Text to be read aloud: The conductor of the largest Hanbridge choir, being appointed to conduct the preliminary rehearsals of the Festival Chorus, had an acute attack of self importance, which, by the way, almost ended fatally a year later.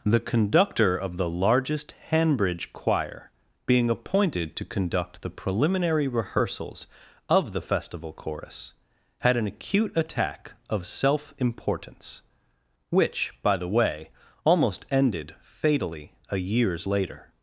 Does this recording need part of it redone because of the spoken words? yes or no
yes